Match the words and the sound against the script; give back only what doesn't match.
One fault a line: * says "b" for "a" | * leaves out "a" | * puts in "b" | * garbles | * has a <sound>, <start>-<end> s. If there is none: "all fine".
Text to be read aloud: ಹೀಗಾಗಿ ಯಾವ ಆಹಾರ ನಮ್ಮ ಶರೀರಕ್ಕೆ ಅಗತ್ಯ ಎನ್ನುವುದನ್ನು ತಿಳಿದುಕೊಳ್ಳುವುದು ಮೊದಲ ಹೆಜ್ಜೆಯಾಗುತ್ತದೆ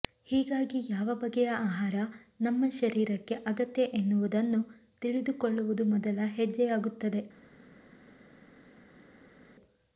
* puts in "ಬಗೆಯ"